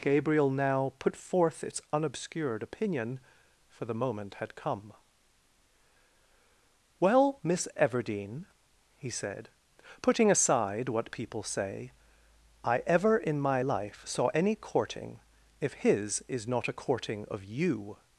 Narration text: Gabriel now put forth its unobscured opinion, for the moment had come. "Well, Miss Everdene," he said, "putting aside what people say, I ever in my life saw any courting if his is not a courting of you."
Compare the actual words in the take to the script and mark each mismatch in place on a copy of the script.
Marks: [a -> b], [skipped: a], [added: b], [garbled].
Gabriel now put forth its unobscured opinion, for the moment had come. "Well, Miss Everdene," he said, "putting aside what people say, I ever in my life saw any courting if his is not a courting of you."